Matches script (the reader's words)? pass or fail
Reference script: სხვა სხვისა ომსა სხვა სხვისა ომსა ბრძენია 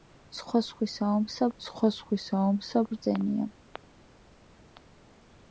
pass